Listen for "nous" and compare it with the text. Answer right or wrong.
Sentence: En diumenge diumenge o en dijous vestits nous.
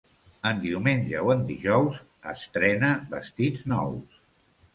right